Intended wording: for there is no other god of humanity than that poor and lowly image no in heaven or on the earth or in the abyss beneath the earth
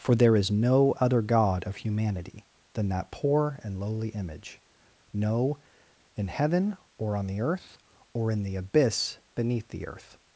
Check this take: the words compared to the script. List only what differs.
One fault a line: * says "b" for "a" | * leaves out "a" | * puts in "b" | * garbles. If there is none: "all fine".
all fine